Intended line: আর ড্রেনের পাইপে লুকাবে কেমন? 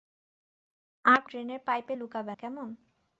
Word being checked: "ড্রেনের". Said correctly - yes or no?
yes